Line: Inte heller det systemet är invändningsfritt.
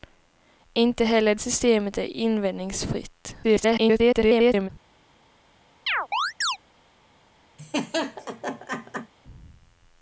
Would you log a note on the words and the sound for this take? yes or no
yes